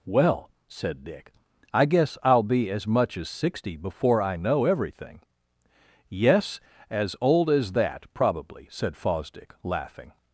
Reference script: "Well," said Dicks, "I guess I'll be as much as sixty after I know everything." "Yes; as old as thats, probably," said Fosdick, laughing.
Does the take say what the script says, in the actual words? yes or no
no